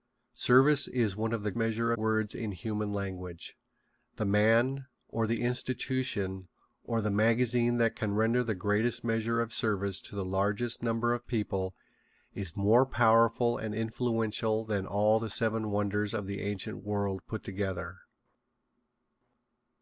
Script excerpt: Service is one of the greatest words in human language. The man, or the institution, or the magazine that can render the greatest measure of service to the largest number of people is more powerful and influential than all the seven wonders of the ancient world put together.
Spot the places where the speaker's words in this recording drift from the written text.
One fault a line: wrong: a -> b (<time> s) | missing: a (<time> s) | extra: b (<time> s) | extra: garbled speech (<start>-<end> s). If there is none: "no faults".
wrong: greatest -> measure (1.5 s)